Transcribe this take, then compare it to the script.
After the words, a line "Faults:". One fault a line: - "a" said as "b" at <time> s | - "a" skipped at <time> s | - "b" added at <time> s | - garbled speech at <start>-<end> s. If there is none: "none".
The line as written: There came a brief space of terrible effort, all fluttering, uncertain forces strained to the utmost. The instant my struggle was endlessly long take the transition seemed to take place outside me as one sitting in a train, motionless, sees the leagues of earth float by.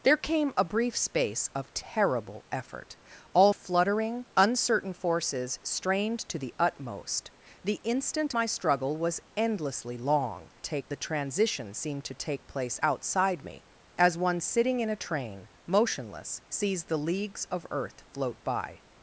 There came a brief space of terrible effort, all fluttering, uncertain forces strained to the utmost. The instant my struggle was endlessly long take the transition seemed to take place outside me as one sitting in a train, motionless, sees the leagues of earth float by.
Faults:
none